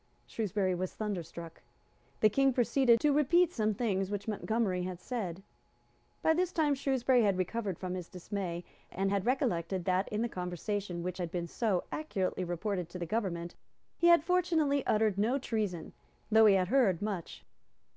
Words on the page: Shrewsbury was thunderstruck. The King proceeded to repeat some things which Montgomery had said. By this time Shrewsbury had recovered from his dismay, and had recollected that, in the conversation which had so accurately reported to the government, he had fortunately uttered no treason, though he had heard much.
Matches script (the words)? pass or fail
fail